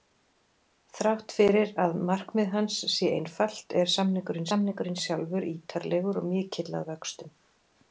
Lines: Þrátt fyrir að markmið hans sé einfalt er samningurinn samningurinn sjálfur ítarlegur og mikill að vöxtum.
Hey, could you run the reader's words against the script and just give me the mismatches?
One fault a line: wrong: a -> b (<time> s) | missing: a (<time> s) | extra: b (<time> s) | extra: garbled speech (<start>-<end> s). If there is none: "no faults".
no faults